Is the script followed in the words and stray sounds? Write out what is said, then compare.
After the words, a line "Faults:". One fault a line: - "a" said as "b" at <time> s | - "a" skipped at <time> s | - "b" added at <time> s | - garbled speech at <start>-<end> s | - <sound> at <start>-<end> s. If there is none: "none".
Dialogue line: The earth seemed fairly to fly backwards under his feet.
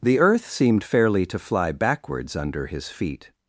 The earth seemed fairly to fly backwards under his feet.
Faults:
none